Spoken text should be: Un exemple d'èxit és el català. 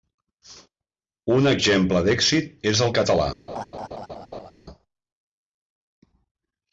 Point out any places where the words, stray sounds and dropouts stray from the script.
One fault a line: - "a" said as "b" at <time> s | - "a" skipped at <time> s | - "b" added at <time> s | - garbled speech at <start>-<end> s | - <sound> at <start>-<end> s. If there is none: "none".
- laugh at 3.5-4.5 s